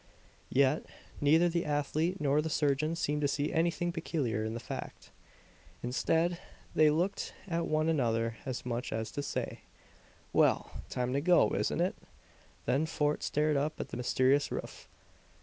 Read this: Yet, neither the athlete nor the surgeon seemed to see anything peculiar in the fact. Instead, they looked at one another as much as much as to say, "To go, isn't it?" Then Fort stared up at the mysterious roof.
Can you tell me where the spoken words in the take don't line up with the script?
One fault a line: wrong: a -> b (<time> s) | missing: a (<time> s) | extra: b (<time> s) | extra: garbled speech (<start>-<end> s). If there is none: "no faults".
wrong: much as to say -> to say Well time (9.1 s)